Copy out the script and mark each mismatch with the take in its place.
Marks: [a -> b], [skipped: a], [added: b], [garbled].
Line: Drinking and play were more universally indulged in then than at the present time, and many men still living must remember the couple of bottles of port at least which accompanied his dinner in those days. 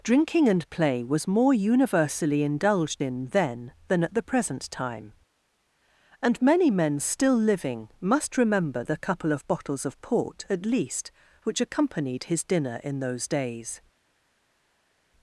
Drinking and play [were -> was] more universally indulged in then than at the present time, and many men still living must remember the couple of bottles of port at least which accompanied his dinner in those days.